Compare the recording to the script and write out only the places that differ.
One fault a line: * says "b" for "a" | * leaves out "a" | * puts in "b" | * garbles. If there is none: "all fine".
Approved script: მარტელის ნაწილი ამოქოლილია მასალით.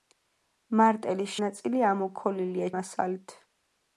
all fine